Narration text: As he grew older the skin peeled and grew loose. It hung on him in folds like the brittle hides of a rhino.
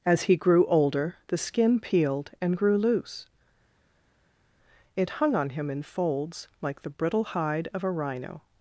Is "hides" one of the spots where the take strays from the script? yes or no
yes